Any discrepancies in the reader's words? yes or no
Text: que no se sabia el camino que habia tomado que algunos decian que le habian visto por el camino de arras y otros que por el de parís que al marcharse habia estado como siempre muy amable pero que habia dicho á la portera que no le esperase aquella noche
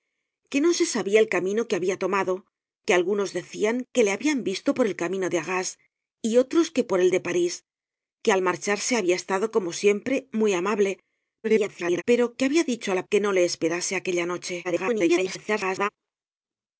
yes